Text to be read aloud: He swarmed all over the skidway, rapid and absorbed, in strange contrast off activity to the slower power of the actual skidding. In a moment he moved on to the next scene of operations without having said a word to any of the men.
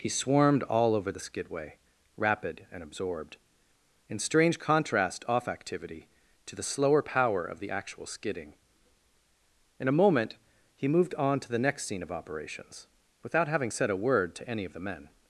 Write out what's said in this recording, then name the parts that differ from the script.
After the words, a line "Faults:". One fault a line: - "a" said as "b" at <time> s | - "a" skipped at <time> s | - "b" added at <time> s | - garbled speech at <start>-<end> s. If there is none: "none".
He swarmed all over the skidway, rapid and absorbed, in strange contrast off activity to the slower power of the actual skidding. In a moment he moved on to the next scene of operations without having said a word to any of the men.
Faults:
none